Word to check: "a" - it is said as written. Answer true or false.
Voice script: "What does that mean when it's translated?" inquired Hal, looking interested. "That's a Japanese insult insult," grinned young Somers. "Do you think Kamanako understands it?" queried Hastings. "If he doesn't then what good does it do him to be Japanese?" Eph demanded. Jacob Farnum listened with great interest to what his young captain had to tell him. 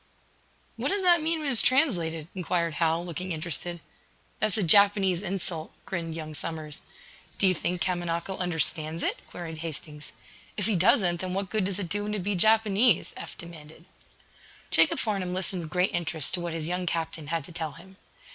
true